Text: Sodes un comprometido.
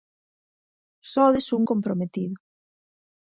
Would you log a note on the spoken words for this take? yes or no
no